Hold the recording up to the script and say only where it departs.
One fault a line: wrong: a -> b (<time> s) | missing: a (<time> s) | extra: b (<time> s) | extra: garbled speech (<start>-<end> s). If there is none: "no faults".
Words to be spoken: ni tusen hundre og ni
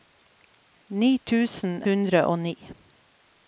no faults